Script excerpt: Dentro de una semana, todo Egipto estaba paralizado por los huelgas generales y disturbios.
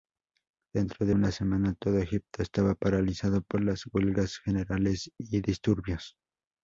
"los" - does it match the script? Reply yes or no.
no